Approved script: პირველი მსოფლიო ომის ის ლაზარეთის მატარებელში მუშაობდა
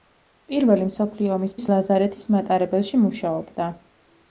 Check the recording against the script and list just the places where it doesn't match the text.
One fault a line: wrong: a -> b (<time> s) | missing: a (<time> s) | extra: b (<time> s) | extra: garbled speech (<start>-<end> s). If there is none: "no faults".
no faults